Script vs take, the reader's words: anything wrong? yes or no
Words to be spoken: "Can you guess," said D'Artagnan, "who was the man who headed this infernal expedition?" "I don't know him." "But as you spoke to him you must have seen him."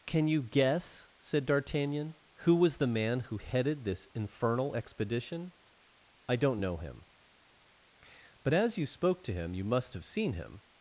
no